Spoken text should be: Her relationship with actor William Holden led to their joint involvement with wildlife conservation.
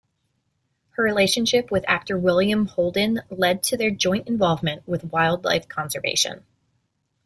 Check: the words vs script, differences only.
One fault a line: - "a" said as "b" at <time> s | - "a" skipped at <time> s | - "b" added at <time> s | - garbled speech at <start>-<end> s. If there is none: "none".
none